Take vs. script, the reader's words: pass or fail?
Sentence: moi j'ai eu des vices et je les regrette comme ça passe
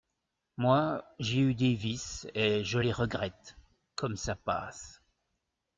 pass